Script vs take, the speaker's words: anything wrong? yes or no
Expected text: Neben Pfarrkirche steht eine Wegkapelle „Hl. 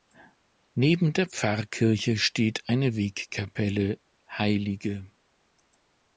yes